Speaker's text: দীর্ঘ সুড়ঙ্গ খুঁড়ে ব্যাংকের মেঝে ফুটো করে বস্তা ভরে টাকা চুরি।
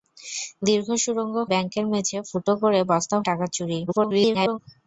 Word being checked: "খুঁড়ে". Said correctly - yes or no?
no